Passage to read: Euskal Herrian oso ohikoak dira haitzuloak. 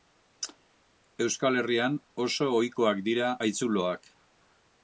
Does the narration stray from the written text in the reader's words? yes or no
no